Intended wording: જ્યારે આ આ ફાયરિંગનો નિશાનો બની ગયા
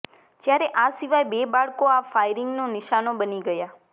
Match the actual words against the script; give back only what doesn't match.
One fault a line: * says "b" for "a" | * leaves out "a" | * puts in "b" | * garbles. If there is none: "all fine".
* puts in "સિવાય બે બાળકો"